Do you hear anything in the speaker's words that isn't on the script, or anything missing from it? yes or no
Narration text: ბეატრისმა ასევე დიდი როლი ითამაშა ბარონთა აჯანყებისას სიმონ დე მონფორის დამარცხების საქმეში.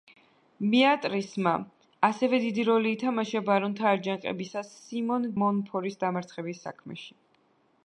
yes